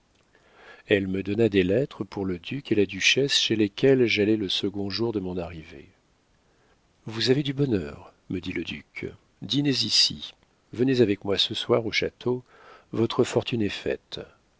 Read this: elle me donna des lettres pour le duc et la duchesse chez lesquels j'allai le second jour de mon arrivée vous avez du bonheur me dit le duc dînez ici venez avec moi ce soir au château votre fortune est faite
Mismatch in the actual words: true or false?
false